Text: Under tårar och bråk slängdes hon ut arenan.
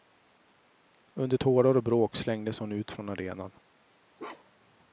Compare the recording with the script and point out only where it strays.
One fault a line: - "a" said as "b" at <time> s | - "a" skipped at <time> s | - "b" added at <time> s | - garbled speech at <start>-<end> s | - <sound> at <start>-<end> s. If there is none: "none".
- "från" added at 2.9 s
- bark at 4.2-4.8 s